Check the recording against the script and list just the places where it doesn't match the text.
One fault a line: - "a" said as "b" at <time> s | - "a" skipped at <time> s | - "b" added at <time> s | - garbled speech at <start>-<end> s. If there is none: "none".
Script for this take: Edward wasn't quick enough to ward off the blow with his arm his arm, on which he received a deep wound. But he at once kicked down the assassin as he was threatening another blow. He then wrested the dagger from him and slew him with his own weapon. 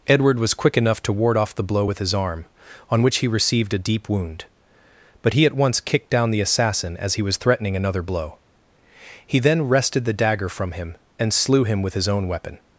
- "wasn't" said as "was" at 0.4 s
- "his arm" skipped at 2.5 s